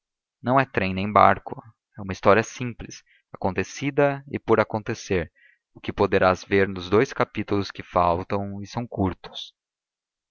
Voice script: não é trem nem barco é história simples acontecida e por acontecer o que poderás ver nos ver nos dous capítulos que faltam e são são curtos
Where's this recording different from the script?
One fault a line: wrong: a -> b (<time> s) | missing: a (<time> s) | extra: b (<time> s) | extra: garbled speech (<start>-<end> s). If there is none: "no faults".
extra: uma (2.0 s)
missing: ver nos (6.9 s)
missing: são (8.9 s)